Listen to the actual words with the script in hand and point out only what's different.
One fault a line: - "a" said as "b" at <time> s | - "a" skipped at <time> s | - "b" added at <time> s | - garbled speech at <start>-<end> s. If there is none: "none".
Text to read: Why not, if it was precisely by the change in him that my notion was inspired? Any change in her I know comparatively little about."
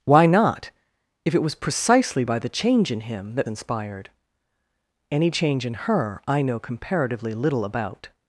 - "my notion was" skipped at 3.5 s